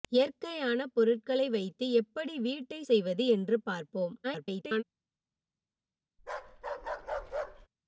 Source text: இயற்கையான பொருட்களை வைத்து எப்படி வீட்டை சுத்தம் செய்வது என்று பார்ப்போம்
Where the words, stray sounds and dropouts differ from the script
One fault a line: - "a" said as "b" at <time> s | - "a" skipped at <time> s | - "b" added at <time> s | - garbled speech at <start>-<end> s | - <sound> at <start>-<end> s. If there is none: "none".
- "சுத்தம்" skipped at 2.8 s
- garbled speech at 4.2-4.8 s
- bark at 6.2-7.7 s